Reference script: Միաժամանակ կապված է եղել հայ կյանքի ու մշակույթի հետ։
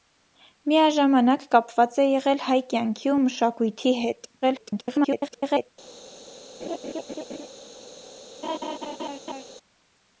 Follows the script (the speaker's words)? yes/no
no